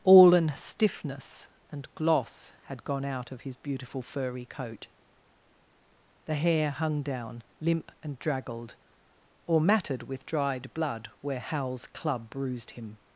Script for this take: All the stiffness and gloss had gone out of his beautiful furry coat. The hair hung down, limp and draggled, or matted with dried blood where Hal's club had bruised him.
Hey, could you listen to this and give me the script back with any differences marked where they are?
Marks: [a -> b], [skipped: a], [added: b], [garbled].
All [the -> an] stiffness and gloss had gone out of his beautiful furry coat. The hair hung down, limp and draggled, or matted with dried blood where Hal's club [skipped: had] bruised him.